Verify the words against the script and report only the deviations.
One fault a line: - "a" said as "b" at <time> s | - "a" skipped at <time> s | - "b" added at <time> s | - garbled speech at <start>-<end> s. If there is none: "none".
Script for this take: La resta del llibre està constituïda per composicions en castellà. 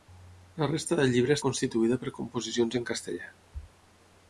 - "està" skipped at 1.4 s